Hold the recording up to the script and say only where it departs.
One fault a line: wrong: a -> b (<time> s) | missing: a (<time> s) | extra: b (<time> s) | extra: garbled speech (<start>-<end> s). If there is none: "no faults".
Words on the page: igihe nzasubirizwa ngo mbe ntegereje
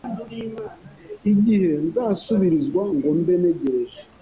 no faults